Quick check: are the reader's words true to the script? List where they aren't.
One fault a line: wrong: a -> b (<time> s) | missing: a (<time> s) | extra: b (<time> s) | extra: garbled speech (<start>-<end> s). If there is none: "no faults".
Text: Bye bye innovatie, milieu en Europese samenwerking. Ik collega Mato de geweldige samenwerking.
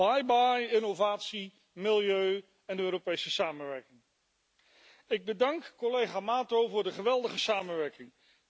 extra: bedank (5.2 s)
extra: voor (6.7 s)